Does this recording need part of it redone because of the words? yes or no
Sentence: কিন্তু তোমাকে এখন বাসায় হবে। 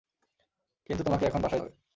no